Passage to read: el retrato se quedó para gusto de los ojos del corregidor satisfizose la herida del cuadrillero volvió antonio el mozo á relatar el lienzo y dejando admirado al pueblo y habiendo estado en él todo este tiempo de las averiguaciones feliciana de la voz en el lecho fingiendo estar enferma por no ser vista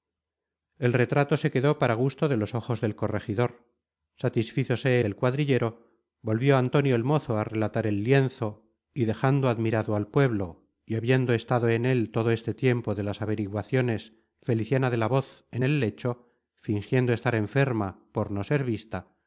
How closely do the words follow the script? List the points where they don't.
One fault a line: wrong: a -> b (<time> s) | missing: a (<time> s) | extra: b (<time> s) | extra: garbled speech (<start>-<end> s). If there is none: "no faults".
missing: la herida (5.0 s)